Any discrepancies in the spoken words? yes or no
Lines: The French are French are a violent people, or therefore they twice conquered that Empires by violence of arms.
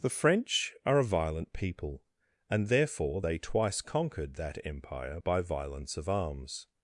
yes